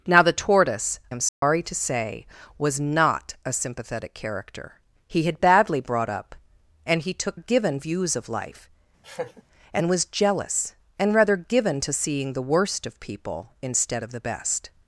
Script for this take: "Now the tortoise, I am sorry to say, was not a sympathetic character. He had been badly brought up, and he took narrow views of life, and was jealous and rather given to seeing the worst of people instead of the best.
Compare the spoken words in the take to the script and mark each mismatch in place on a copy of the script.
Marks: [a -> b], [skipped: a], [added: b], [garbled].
"Now the tortoise, [skipped: I] am sorry to say, was not a sympathetic character. He had [skipped: been] badly brought up, and he took [narrow -> given] views of life, and was jealous and rather given to seeing the worst of people instead of the best.